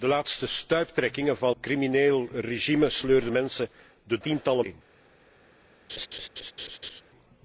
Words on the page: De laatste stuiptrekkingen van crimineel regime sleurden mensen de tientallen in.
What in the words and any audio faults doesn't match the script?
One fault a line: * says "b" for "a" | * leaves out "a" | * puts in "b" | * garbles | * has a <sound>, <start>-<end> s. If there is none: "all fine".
* has a laugh, 5.9-7.0 s